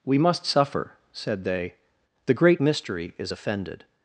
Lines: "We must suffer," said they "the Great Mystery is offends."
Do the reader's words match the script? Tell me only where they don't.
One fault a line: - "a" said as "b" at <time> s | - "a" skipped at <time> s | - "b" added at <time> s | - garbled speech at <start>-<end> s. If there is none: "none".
- "offends" said as "offended" at 3.3 s